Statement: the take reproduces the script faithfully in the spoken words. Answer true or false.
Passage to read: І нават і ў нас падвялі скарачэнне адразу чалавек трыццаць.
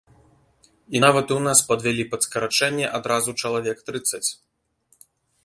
false